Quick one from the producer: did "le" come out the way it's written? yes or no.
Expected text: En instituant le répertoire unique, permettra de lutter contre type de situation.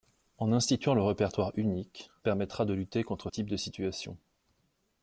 yes